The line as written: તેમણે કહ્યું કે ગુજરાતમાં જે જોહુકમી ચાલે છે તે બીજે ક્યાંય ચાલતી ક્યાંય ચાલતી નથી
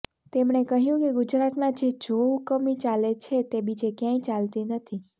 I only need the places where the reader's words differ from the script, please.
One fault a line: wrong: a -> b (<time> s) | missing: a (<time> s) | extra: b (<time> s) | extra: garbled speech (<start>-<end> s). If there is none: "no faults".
missing: ક્યાંય ચાલતી (4.7 s)